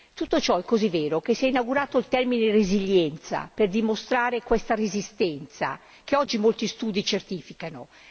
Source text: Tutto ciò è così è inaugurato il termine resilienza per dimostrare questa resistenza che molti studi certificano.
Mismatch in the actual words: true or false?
true